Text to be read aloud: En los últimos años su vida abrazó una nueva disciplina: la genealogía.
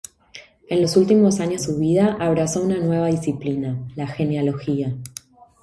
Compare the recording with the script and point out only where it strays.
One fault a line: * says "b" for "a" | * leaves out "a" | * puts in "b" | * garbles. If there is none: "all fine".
all fine